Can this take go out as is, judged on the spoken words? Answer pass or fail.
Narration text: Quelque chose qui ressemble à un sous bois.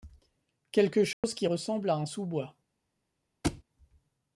pass